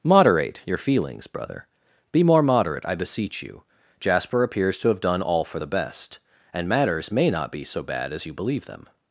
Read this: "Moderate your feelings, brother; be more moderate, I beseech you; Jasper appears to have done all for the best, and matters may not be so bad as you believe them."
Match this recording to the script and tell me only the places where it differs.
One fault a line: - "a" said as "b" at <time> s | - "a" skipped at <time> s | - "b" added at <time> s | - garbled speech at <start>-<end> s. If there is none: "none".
none